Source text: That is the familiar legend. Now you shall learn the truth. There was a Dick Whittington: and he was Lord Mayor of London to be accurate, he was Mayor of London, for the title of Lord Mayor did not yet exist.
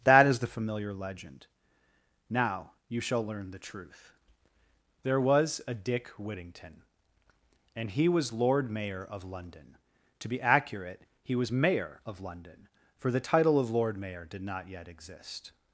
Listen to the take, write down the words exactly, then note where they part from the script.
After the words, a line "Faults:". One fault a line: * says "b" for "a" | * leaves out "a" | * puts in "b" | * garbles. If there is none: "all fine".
That is the familiar legend. Now you shall learn the truth. There was a Dick Whittington: and he was Lord Mayor of London to be accurate, he was Mayor of London, for the title of Lord Mayor did not yet exist.
Faults:
all fine